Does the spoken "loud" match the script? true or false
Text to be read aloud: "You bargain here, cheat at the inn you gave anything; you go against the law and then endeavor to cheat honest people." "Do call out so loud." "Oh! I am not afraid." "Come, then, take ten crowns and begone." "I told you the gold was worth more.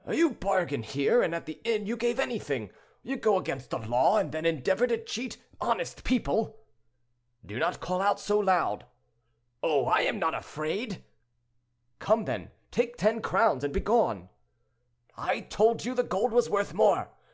true